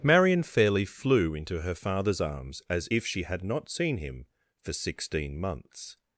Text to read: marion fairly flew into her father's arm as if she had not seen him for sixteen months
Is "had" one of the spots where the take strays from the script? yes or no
no